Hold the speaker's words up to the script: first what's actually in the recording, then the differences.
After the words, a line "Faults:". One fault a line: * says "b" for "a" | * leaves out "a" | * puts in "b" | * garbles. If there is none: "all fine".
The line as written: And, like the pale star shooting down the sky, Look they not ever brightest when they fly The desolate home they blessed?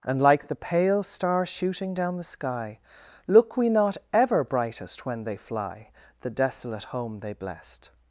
And, like the pale star shooting down the sky, Look we not ever brightest when they fly The desolate home they blessed?
Faults:
* says "we" for "they"